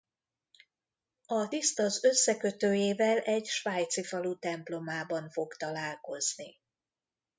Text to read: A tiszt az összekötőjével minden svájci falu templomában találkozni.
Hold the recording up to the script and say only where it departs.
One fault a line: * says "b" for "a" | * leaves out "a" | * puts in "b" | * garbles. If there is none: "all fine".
* says "egy" for "minden"
* puts in "fog"